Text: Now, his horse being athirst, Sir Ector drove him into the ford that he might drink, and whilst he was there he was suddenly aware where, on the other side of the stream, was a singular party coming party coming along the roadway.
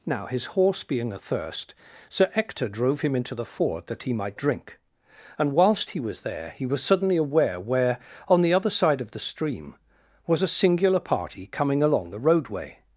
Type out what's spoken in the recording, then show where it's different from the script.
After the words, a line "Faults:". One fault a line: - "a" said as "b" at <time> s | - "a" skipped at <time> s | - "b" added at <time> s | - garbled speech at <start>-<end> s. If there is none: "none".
Now, his horse being athirst, Sir Ector drove him into the ford that he might drink, and whilst he was there he was suddenly aware where, on the other side of the stream, was a singular party coming along the roadway.
Faults:
- "party coming" skipped at 11.8 s